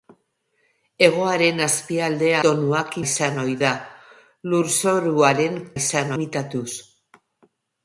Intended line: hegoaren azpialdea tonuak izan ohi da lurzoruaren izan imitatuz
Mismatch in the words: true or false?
false